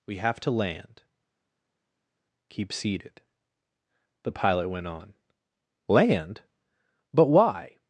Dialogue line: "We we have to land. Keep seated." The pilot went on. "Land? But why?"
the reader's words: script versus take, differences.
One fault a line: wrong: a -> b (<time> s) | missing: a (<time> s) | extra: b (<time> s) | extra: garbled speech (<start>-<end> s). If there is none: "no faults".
missing: we (0.2 s)